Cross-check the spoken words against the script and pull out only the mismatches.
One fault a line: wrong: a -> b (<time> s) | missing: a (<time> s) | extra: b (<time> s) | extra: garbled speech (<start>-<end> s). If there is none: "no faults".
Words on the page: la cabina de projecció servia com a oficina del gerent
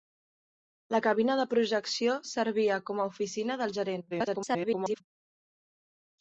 extra: garbled speech (4.1-5.0 s)